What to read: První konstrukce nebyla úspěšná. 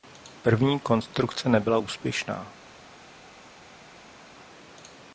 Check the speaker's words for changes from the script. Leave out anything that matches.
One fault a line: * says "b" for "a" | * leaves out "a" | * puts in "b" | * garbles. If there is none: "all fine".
all fine